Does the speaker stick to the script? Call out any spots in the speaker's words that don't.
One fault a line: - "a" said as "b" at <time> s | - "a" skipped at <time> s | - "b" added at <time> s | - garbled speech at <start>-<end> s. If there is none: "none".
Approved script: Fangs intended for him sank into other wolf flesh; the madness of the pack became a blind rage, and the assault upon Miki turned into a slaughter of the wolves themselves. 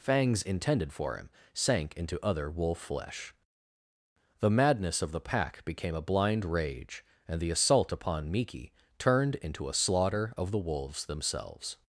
none